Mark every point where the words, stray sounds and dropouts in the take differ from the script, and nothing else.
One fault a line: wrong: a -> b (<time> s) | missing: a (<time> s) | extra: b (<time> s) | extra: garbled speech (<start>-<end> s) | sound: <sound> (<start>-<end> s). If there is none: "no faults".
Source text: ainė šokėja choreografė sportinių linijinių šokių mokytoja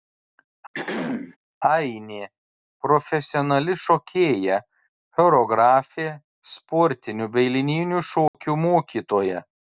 sound: throat clearing (0.7-1.4 s)
extra: profesionali (2.9 s)
extra: bei (7.4 s)
sound: dropout (8.3-8.3 s)